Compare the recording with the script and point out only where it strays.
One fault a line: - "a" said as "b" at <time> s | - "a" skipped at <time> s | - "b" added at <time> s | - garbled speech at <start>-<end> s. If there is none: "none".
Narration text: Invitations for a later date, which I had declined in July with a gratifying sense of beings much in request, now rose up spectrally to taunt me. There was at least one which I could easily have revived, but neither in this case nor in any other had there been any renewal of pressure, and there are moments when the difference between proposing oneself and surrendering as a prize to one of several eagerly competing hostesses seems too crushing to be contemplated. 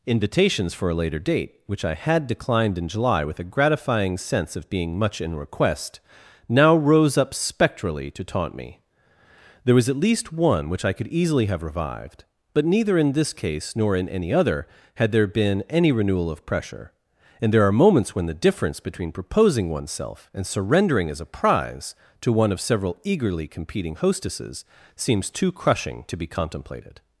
- "beings" said as "being" at 4.7 s